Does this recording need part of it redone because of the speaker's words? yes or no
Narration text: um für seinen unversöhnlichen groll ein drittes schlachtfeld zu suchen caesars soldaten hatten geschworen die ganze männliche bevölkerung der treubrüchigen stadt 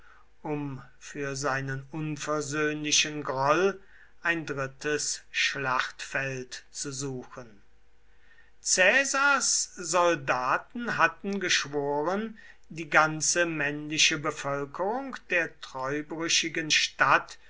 no